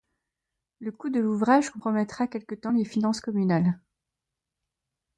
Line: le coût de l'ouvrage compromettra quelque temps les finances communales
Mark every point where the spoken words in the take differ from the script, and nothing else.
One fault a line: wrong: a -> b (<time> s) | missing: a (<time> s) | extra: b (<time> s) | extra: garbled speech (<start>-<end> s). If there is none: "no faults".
no faults